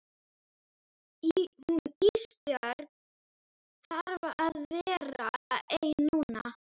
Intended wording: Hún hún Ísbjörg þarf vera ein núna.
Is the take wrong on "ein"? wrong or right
right